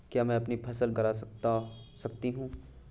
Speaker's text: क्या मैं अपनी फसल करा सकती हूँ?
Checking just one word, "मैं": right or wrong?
right